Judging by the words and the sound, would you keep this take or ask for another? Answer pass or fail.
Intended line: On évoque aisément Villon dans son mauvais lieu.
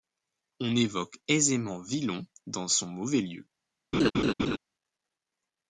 fail